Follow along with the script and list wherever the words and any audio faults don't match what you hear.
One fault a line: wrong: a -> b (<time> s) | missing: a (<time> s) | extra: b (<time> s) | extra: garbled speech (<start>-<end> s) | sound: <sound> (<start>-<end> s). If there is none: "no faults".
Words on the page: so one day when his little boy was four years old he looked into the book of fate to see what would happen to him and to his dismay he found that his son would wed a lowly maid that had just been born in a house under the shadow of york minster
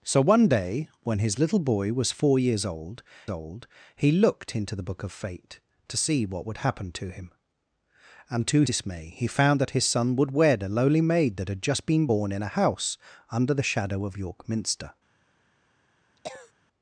extra: old (3.3 s)
missing: his (8.6 s)
sound: cough (16.2-16.5 s)